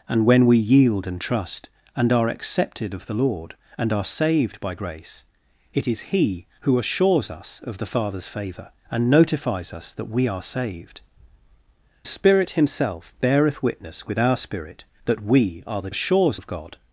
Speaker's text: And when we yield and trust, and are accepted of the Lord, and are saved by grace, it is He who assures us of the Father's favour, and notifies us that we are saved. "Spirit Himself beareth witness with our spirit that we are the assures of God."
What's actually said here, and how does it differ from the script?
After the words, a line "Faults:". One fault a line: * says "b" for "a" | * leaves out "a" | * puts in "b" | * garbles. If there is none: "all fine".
And when we yield and trust, and are accepted of the Lord, and are saved by grace, it is He who assures us of the Father's favour, and notifies us that we are saved. "Spirit Himself beareth witness with our spirit that we are the assures of God."
Faults:
all fine